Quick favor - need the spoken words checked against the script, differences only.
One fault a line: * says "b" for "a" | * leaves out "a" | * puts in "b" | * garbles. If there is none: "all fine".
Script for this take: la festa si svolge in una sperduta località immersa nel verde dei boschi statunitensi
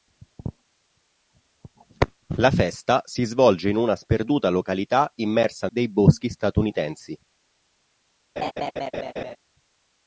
* leaves out "nel verde"